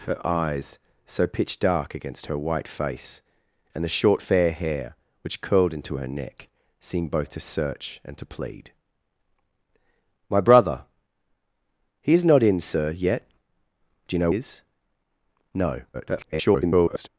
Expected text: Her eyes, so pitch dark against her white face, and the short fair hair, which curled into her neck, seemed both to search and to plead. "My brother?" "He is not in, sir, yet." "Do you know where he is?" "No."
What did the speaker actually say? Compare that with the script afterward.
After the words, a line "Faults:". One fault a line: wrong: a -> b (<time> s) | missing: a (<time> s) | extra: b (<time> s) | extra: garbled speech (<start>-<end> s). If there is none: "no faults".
Her eyes, so pitch dark against her white face, and the short fair hair, which curled into her neck, seemed both to search and to plead. "My brother?" "He is not in, sir, yet." "Do you know is?" "No." [garbled]
Faults:
missing: where he (14.3 s)
extra: garbled speech (15.9-17.1 s)